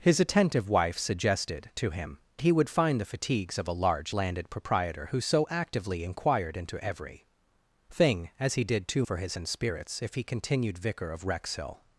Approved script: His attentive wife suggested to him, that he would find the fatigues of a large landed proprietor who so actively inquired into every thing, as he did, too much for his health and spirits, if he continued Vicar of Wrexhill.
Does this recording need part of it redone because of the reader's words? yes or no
yes